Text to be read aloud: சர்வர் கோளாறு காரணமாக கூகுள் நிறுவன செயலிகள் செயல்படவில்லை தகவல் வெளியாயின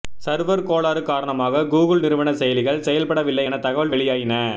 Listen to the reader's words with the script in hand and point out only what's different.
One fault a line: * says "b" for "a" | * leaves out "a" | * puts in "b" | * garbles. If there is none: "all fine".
* puts in "என"